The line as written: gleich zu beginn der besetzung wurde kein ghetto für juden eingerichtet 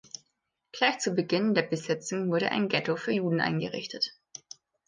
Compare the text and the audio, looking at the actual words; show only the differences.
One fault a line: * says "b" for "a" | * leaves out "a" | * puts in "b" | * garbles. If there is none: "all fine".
* says "ein" for "kein"